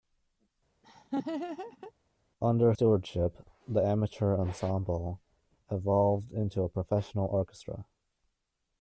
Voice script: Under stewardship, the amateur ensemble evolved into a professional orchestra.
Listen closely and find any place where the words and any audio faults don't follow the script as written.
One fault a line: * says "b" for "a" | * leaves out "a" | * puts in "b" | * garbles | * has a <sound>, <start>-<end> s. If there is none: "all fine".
* has a laugh, 0.8-1.9 s